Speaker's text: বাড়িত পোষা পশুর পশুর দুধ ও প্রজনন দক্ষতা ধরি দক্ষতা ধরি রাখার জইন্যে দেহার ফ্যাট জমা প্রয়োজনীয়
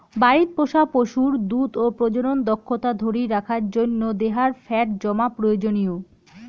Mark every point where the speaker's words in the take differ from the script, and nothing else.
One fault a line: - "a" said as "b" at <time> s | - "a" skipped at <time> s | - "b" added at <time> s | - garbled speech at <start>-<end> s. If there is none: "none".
- "পশুর" skipped at 1.3 s
- "দক্ষতা ধরি" skipped at 3.2 s